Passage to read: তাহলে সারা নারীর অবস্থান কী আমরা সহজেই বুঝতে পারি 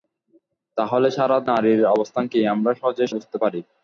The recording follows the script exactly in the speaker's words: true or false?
true